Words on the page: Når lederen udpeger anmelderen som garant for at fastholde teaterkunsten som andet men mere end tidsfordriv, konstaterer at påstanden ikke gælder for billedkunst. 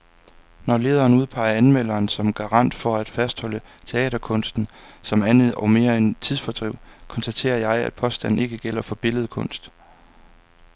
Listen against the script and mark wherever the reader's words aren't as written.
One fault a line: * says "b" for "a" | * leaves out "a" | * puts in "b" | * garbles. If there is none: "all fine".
* says "og" for "men"
* puts in "jeg"